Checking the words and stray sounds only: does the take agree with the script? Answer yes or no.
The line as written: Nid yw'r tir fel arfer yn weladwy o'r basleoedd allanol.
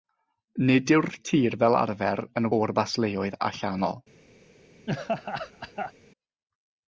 no